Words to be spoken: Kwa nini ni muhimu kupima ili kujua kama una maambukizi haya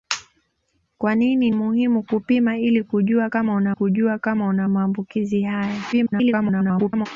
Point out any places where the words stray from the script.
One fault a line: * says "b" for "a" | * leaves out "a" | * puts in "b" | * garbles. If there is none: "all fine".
* leaves out "ni"
* puts in "kujua kama una"
* garbles